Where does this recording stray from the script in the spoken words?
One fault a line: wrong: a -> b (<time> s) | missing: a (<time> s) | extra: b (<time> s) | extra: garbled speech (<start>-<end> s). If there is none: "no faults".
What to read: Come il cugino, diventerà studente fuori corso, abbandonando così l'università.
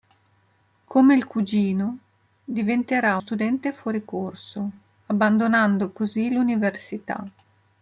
no faults